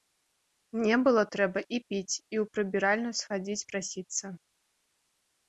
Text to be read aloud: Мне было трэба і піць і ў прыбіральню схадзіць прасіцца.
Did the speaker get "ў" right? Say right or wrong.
right